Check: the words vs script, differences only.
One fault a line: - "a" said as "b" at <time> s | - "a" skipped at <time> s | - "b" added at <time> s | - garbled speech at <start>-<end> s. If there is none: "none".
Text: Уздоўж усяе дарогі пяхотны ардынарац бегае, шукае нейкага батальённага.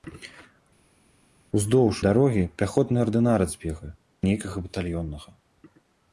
- "усяе" skipped at 2.0 s
- "шукае" skipped at 3.9 s